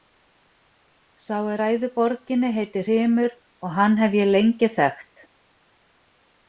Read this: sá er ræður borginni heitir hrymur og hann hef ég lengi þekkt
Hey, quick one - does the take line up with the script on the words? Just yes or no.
yes